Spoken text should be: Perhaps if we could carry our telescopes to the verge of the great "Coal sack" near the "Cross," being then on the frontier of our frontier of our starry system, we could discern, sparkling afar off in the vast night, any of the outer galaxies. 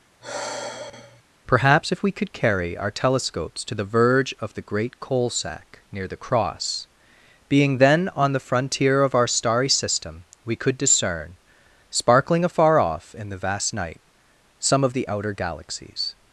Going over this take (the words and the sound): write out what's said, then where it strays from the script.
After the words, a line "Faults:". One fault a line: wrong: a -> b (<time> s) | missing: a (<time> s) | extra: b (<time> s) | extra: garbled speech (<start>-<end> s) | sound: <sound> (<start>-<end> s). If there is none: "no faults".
Perhaps if we could carry our telescopes to the verge of the great "Coal sack" near the "Cross," being then on the frontier of our starry system, we could discern, sparkling afar off in the vast night, some of the outer galaxies.
Faults:
sound: sigh (0.2-1.2 s)
missing: frontier of our (9.3 s)
wrong: any -> some (14.6 s)